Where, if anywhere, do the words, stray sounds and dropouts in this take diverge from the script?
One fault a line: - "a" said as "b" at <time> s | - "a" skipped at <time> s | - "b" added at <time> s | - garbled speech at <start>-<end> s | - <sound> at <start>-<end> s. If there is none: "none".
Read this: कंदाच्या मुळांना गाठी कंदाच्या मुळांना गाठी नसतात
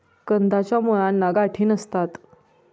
- "कंदाच्या मुळांना गाठी" skipped at 1.6 s